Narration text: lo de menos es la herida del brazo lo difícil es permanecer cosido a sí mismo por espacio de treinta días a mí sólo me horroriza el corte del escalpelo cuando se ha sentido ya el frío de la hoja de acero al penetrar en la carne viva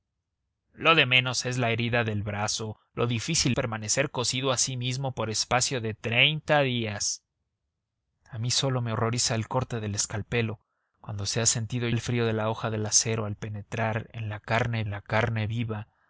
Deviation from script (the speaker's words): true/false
true